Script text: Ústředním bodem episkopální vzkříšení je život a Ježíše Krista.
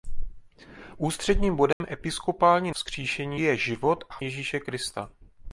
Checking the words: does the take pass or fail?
pass